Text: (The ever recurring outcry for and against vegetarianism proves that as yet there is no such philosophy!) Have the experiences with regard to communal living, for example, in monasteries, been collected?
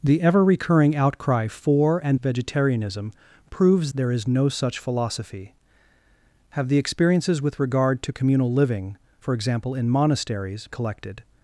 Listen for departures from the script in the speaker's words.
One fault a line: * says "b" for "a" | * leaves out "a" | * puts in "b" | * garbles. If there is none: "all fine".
* leaves out "against"
* leaves out "that as yet"
* leaves out "been"